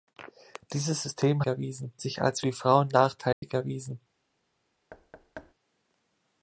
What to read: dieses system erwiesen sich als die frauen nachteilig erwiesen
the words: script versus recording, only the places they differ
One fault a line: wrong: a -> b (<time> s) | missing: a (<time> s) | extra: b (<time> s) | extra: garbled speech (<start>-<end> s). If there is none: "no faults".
no faults